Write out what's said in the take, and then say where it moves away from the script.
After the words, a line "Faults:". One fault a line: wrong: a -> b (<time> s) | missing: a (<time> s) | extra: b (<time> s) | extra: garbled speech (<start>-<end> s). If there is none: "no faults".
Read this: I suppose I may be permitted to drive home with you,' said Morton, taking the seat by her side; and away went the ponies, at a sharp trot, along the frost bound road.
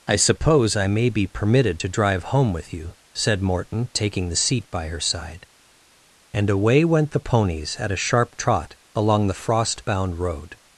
I suppose I may be permitted to drive home with you,' said Morton, taking the seat by her side; and away went the ponies, at a sharp trot, along the frost bound road.
Faults:
no faults